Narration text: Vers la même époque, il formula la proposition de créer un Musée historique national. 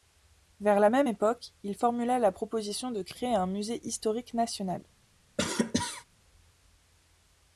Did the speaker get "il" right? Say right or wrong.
right